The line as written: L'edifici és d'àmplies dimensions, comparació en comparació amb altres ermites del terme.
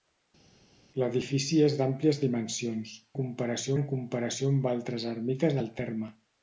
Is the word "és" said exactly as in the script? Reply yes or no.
yes